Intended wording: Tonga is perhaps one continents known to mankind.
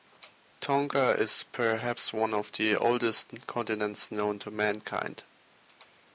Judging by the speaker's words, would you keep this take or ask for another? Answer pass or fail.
fail